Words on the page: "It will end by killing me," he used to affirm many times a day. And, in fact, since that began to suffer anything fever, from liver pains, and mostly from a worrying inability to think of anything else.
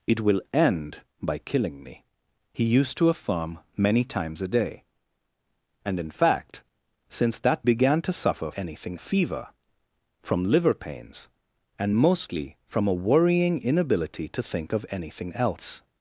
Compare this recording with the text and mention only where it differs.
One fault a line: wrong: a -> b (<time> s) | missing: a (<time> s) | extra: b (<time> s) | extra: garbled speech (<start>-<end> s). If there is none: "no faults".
no faults